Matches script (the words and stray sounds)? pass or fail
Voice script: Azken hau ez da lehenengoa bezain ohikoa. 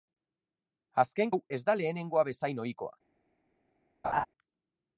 fail